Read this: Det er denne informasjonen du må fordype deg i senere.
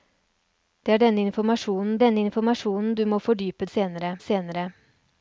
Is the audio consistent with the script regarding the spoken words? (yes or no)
no